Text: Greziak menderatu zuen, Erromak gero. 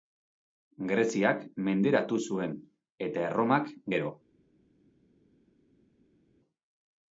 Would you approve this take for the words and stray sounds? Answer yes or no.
no